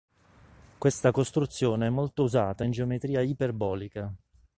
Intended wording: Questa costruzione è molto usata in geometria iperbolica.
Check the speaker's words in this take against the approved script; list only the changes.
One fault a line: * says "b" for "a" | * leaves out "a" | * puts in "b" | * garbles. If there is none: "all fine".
all fine